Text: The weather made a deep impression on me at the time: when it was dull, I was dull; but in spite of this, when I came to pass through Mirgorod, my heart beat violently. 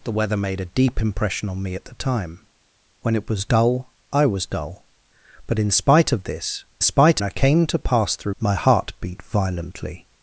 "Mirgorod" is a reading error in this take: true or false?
true